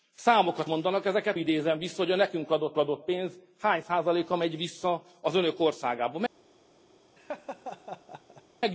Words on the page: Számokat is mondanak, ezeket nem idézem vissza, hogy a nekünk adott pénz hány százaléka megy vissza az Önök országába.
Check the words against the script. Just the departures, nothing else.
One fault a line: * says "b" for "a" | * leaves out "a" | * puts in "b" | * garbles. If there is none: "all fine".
* leaves out "is"
* leaves out "nem"
* puts in "adott"